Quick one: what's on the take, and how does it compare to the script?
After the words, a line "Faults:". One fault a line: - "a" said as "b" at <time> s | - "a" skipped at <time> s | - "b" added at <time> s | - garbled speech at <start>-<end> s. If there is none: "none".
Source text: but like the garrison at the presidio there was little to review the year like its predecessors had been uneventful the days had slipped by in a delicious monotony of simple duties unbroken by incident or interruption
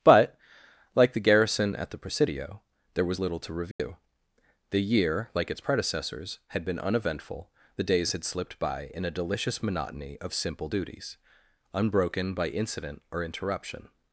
but like the garrison at the presidio there was little to review the year like its predecessors had been uneventful the days had slipped by in a delicious monotony of simple duties unbroken by incident or interruption
Faults:
none